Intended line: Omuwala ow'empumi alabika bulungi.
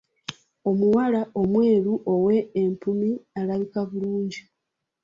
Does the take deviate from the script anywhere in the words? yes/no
yes